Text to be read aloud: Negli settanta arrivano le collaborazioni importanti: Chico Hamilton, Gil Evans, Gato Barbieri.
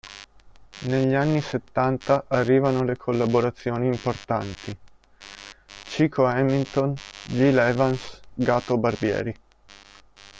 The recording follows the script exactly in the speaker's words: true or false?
false